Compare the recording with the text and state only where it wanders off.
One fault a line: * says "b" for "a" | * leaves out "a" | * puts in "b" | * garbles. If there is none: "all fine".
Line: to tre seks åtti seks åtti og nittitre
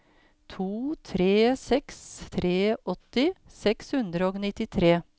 * puts in "tre"
* says "hundre" for "åtti"